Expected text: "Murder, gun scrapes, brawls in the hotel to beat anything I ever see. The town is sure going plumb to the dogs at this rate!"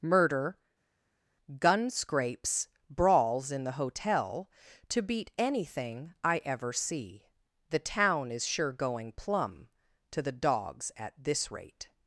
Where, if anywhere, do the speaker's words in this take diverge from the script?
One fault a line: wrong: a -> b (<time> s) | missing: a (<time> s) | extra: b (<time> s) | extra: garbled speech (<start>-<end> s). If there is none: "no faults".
no faults